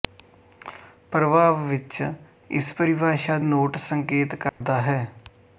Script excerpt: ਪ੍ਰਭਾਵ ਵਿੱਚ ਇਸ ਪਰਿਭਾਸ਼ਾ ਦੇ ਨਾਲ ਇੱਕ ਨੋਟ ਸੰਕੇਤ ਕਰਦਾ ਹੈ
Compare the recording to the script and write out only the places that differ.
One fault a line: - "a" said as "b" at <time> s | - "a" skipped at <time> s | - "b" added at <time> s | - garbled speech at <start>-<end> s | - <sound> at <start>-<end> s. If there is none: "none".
- "ਦੇ ਨਾਲ ਇੱਕ" skipped at 3.4 s
- dropout at 4.5-4.6 s